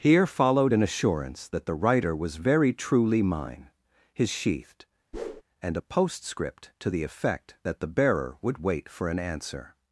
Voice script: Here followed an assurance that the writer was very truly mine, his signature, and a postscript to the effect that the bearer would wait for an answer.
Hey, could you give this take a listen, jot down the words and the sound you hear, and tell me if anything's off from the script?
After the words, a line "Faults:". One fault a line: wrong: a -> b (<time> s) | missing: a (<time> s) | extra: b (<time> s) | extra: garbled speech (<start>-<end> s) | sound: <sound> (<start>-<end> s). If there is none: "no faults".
Here followed an assurance that the writer was very truly mine, his sheathed, and a postscript to the effect that the bearer would wait for an answer.
Faults:
wrong: signature -> sheathed (4.3 s)
sound: whoosh (5.1-5.4 s)